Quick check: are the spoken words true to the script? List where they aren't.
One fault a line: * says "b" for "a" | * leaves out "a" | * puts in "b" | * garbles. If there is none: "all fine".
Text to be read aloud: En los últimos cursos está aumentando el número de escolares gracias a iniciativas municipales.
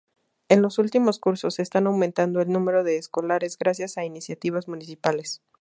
all fine